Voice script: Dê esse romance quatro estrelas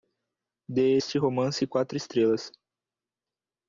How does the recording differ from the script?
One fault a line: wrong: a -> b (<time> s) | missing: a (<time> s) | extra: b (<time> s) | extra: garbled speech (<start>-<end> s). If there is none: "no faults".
wrong: esse -> este (0.9 s)